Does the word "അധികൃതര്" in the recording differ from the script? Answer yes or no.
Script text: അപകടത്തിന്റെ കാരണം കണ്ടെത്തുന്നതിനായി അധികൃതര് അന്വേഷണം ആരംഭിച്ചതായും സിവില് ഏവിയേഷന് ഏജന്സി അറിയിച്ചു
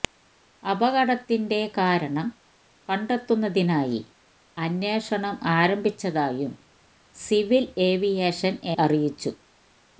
yes